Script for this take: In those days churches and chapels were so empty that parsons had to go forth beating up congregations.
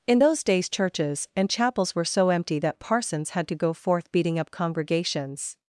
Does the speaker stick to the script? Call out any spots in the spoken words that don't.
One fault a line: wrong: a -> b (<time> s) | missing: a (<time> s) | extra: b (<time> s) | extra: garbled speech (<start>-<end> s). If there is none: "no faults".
no faults